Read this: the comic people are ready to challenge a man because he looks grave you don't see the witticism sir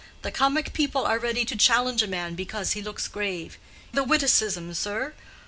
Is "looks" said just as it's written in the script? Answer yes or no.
yes